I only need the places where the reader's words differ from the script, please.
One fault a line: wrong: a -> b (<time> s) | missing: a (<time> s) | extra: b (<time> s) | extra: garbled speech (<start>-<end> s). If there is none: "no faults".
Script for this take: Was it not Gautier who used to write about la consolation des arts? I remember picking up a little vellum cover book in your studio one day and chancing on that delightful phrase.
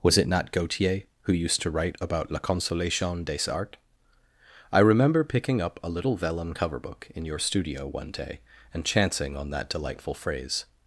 no faults